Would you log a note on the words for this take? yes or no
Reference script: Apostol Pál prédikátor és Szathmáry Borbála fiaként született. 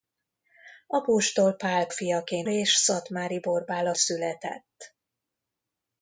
yes